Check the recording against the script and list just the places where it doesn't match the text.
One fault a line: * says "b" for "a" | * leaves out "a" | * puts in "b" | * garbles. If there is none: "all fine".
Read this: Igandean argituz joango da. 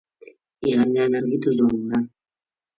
all fine